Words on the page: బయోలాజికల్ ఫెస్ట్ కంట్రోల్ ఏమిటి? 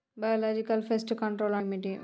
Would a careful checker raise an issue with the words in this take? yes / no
no